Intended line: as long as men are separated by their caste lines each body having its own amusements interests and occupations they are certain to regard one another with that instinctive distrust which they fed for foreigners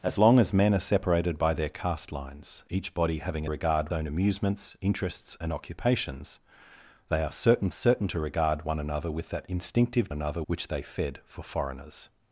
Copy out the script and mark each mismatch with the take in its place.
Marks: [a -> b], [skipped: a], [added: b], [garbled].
as long as men are separated by their caste lines each body having [its -> regard] own amusements interests and occupations they are certain [added: certain] to regard one another with that instinctive [distrust -> another] which they fed for foreigners